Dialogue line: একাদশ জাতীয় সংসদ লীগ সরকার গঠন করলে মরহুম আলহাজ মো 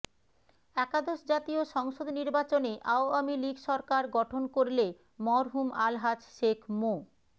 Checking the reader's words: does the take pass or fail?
fail